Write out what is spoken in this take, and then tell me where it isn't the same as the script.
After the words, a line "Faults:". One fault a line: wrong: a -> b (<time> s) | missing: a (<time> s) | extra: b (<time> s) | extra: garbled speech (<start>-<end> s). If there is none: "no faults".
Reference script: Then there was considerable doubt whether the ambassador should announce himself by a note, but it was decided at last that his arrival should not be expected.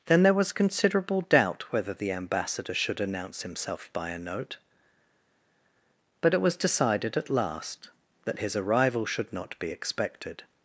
Then there was considerable doubt whether the ambassador should announce himself by a note, but it was decided at last that his arrival should not be expected.
Faults:
no faults